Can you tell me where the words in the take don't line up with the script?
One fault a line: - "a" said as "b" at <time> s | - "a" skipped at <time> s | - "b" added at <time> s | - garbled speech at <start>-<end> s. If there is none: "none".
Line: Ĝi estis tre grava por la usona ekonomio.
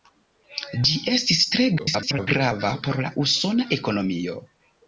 - garbled speech at 1.8-2.3 s